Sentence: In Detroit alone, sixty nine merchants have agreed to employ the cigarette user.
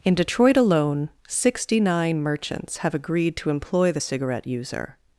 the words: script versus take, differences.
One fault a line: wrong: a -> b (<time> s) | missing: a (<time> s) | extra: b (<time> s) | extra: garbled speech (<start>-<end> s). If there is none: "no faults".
no faults